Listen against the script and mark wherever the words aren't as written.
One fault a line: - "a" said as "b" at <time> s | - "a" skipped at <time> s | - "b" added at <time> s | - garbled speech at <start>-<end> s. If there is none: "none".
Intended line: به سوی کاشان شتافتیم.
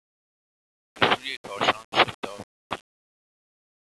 none